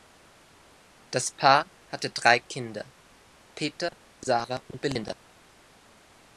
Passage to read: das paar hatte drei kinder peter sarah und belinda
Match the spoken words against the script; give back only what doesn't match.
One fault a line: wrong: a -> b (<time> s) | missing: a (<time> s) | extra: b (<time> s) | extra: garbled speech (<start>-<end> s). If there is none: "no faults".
no faults